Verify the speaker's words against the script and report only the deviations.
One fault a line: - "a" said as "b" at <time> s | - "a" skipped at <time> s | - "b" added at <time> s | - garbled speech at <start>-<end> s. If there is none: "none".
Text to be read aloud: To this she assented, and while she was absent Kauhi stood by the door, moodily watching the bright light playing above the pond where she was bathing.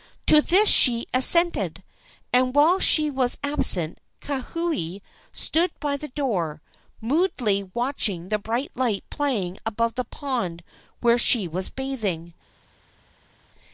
none